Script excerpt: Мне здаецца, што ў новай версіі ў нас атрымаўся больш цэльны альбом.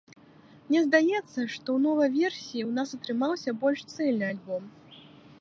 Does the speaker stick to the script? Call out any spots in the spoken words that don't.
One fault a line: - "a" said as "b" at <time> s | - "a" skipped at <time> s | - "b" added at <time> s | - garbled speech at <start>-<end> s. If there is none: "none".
none